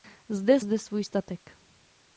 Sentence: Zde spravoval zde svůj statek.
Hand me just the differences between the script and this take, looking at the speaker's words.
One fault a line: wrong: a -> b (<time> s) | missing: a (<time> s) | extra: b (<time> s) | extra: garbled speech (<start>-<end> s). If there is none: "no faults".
missing: spravoval (0.6 s)